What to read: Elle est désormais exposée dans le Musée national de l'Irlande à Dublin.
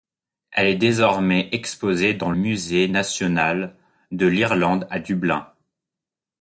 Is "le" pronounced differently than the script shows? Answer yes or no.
yes